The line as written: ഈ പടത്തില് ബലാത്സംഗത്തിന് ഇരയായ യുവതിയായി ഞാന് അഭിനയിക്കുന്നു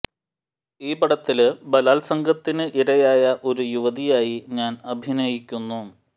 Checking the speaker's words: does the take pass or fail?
fail